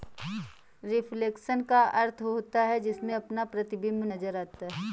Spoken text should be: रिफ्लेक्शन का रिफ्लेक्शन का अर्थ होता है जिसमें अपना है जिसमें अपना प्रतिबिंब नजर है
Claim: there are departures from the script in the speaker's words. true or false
true